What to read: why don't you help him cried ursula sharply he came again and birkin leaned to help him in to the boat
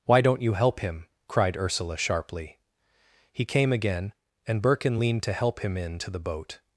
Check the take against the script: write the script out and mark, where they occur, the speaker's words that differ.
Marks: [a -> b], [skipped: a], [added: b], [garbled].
why don't you help him cried ursula sharply he came again and birkin leaned to help him in to the boat